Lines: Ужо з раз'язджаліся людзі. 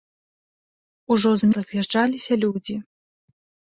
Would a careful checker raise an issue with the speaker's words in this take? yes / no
no